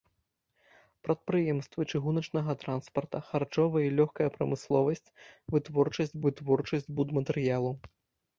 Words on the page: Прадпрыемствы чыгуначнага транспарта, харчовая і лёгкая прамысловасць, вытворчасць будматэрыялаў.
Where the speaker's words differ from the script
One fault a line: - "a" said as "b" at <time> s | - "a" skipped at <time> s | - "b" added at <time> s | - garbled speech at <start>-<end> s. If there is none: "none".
- "вытворчасць" added at 6.3 s